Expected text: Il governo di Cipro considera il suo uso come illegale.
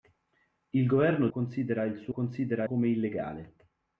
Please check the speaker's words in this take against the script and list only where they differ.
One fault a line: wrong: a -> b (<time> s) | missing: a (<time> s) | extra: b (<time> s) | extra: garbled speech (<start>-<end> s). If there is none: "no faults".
missing: di Cipro (1.3 s)
wrong: uso -> considera (2.1 s)